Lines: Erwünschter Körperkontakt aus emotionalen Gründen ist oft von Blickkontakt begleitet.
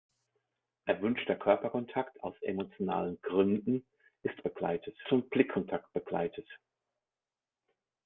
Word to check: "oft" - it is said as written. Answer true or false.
false